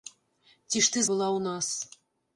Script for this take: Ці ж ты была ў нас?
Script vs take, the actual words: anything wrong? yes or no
no